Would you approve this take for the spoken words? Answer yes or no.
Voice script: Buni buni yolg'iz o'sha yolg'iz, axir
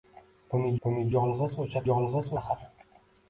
yes